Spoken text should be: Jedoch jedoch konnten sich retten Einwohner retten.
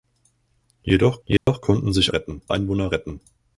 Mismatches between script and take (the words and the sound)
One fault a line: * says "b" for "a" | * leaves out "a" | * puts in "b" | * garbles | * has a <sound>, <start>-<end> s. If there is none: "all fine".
* has a dropout, 1.4-1.5 s